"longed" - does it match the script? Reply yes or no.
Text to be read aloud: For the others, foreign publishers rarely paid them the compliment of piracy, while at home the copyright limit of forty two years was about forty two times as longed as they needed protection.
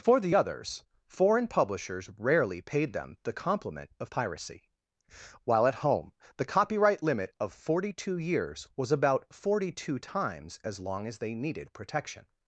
no